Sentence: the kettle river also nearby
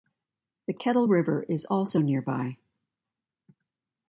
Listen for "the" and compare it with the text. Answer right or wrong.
right